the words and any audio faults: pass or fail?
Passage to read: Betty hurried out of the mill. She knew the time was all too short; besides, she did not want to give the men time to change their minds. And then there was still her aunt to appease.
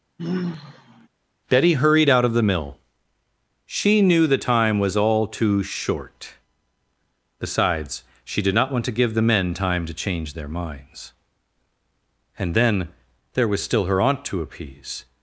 fail